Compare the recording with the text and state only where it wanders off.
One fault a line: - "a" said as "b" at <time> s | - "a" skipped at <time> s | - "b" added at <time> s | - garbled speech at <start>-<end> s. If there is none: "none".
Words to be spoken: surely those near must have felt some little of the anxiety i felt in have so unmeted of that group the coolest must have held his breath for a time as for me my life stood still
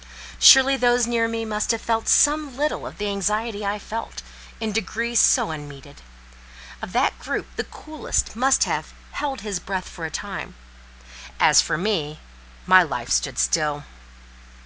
- "me" added at 1.3 s
- "have" said as "degree" at 4.7 s